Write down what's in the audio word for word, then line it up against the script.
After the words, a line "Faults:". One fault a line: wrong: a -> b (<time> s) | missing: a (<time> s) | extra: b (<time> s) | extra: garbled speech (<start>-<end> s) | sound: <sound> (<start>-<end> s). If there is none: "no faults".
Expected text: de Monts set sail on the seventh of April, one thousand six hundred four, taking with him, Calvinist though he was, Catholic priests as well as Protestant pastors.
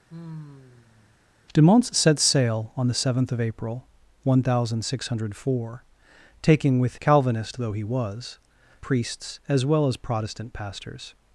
de Monts set sail on the seventh of April, one thousand six hundred four, taking with Calvinist though he was, Priests as well as Protestant pastors.
Faults:
sound: sigh (0.1-1.2 s)
missing: him (7.0 s)
missing: Catholic (8.4 s)